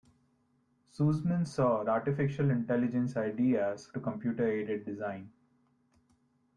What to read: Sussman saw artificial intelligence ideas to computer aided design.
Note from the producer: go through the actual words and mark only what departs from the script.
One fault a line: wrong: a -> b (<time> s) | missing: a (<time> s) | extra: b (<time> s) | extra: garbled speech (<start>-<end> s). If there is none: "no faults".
no faults